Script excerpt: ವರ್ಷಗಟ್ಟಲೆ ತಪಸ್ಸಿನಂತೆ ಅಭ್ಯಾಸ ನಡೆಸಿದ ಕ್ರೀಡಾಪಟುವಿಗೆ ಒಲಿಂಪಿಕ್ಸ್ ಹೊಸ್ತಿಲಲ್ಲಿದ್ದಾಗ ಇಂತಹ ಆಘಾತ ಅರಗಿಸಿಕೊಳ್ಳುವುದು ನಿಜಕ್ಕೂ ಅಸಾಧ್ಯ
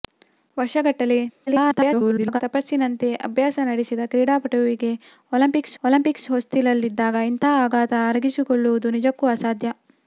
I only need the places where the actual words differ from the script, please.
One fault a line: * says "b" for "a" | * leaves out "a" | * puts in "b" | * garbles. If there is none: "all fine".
* garbles
* puts in "ಒಲಿಂಪಿಕ್ಸ್"